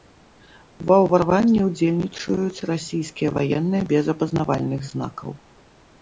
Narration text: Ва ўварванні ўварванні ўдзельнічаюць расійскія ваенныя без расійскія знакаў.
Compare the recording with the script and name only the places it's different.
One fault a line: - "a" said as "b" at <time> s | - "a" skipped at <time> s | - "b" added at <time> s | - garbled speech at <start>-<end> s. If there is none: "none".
- "ўварванні" skipped at 1.6 s
- "расійскія" said as "апазнавальных" at 4.1 s